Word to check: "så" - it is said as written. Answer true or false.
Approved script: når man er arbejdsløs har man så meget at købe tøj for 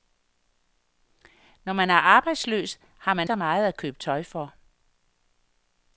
true